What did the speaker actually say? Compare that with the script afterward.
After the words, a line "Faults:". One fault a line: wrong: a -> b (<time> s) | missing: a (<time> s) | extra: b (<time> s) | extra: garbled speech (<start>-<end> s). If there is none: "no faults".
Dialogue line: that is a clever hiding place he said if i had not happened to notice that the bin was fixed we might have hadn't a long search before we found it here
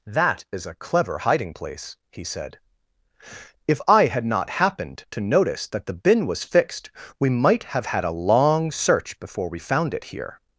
that is a clever hiding place he said if i had not happened to notice that the bin was fixed we might have had a long search before we found it here
Faults:
wrong: hadn't -> had (7.8 s)